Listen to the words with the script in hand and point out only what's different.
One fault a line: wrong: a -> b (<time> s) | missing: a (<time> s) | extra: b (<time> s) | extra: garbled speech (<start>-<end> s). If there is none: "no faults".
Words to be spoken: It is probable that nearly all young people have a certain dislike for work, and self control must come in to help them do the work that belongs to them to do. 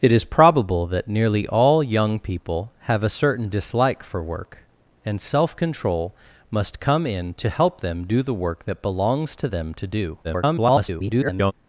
extra: garbled speech (10.2-11.5 s)